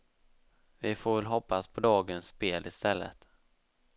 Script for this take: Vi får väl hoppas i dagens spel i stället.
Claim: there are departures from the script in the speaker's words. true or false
true